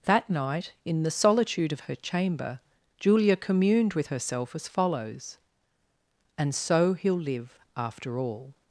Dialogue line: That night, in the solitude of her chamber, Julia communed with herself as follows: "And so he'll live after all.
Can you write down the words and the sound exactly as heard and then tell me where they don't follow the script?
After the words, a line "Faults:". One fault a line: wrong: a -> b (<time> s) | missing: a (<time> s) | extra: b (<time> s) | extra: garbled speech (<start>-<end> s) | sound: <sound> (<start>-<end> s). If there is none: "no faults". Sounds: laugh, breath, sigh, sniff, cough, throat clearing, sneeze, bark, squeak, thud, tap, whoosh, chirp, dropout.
That night, in the solitude of her chamber, Julia communed with herself as follows: "And so he'll live after all.
Faults:
no faults